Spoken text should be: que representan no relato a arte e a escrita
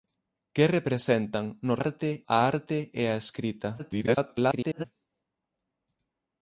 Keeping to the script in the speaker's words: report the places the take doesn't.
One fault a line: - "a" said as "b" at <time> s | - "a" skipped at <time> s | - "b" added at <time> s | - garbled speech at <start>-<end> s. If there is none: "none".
- "relato" said as "arte" at 1.8 s
- garbled speech at 3.8-4.8 s